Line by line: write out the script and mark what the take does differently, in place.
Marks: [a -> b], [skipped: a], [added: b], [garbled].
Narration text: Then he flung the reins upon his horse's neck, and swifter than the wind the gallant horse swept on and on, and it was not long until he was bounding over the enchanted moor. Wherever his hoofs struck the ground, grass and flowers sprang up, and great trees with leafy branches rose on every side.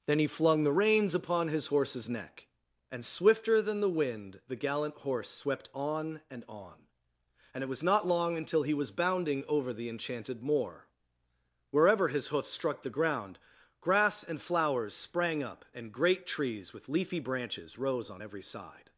Then he flung the reins upon his horse's neck, and swifter than the wind the gallant horse swept on and on, and it was not long until he was bounding over the enchanted moor. Wherever his hoofs struck the ground, grass and flowers sprang up, and great trees with leafy branches rose on every side.